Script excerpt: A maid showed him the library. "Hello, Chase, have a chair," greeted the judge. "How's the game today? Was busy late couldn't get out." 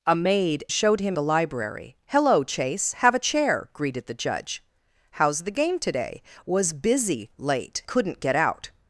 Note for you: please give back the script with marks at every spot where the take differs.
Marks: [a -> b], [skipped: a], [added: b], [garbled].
A maid showed him the library. "Hello, Chase, have a chair," greeted the judge. "How's the game today? Was busy late couldn't get out."